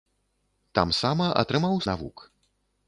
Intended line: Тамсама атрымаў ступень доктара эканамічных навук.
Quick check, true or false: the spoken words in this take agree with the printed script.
false